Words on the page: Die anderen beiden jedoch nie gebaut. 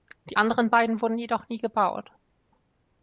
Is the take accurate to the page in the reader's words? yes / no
no